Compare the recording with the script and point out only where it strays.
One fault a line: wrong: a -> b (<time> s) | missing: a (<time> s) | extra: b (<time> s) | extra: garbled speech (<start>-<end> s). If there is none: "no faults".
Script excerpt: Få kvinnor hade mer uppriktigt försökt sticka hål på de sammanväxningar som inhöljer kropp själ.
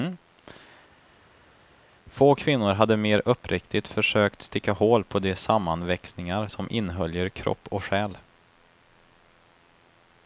extra: och (7.7 s)